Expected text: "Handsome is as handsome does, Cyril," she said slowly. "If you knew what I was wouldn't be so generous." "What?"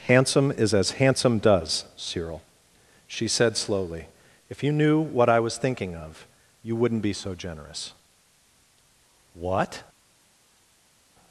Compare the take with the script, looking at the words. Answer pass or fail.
fail